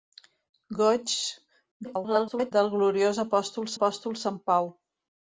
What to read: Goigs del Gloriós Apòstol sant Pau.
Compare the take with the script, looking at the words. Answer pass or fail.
fail